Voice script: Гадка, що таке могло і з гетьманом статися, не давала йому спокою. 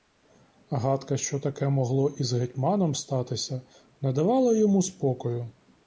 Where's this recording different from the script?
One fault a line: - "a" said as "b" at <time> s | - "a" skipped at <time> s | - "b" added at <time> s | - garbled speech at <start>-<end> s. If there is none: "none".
none